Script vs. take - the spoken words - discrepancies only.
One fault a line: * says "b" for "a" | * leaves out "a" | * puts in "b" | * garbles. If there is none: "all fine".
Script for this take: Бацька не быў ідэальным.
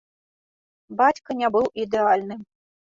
all fine